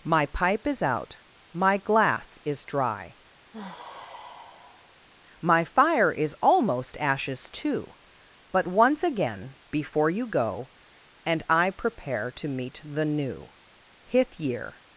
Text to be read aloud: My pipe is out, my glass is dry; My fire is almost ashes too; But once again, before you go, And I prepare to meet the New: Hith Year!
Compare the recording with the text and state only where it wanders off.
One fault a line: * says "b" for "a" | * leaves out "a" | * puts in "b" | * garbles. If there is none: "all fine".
all fine